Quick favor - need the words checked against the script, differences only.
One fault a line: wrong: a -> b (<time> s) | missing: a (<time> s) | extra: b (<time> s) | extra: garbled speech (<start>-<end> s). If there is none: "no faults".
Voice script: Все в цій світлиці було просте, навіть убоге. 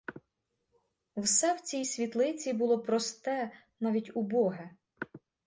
no faults